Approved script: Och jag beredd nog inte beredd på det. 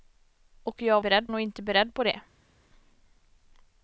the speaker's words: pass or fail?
pass